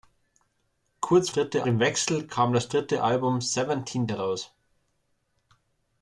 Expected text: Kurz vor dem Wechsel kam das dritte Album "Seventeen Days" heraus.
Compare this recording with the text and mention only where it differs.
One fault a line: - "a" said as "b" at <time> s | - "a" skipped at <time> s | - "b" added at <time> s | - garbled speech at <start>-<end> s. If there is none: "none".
- "vor" said as "dritte" at 1.3 s
- "Days" skipped at 4.1 s